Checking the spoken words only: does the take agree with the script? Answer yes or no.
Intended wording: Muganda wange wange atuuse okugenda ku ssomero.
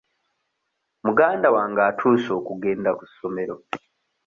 no